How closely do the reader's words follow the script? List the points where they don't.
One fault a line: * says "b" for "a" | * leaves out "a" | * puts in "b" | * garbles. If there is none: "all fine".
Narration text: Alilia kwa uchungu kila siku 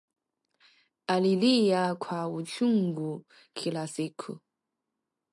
all fine